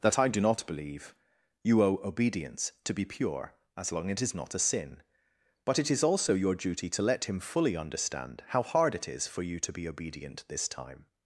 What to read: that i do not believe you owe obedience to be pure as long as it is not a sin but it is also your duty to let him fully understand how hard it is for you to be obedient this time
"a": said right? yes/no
yes